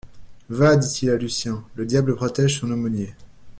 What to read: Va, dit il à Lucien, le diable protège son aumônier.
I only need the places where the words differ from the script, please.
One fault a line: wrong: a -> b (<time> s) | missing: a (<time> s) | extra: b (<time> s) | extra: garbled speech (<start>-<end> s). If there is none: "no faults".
no faults